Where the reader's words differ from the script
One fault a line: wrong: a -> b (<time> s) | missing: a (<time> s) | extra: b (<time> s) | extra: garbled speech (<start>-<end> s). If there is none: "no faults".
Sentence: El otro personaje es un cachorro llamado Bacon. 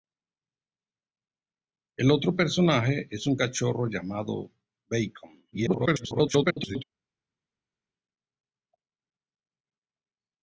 extra: garbled speech (5.5-6.8 s)